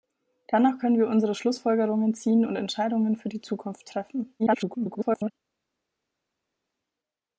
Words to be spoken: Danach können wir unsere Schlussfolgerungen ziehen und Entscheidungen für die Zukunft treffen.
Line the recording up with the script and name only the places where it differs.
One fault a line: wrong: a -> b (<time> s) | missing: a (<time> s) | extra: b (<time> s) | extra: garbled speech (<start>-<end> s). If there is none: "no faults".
extra: garbled speech (4.4-5.3 s)